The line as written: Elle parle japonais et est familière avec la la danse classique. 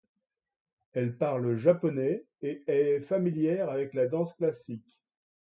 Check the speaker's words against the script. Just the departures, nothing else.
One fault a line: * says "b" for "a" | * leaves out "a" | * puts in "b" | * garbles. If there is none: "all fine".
* leaves out "la"